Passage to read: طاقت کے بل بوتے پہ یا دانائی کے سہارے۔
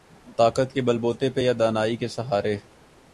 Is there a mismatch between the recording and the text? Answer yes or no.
no